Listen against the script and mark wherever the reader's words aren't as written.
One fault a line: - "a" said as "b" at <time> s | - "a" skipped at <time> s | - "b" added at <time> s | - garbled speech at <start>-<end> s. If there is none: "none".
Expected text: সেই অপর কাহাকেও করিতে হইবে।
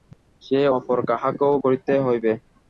none